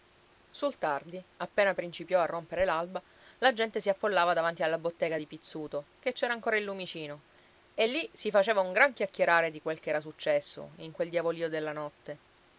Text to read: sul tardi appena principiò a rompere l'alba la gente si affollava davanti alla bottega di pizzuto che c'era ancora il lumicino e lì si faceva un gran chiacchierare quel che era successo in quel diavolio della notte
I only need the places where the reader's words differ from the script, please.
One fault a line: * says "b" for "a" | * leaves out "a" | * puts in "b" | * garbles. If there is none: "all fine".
* puts in "di"